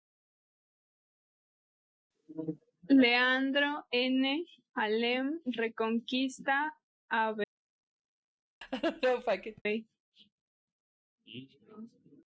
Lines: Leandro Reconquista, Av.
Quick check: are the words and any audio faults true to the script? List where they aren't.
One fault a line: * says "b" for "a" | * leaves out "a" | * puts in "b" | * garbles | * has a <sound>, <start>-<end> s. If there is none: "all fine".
* puts in "N Alem"
* has a laugh, 8.6-9.6 s